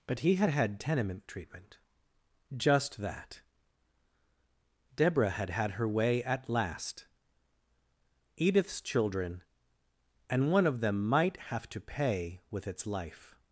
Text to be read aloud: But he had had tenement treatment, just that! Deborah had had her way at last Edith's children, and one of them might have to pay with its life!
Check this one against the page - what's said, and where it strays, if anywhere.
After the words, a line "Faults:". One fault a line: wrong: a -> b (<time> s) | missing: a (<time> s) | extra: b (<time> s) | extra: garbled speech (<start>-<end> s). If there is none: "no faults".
But he had had tenement treatment, just that! Deborah had had her way at last Edith's children, and one of them might have to pay with its life!
Faults:
no faults